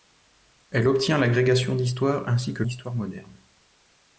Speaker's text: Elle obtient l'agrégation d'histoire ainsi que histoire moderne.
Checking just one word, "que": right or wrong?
right